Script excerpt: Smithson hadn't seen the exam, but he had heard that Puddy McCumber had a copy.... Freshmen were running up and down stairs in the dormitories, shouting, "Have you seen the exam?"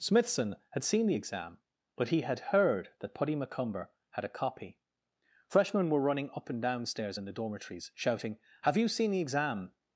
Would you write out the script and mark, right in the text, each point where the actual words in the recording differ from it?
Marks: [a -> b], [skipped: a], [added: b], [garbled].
Smithson [hadn't -> had] seen the exam, but he had heard that Puddy McCumber had a copy.... Freshmen were running up and down stairs in the dormitories, shouting, "Have you seen the exam?"